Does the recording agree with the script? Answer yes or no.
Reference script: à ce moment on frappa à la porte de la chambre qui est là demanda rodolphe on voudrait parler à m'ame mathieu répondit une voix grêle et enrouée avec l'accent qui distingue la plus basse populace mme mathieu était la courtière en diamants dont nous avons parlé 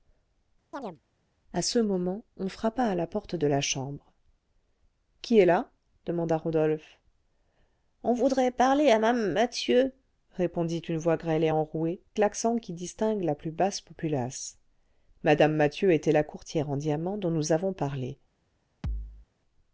no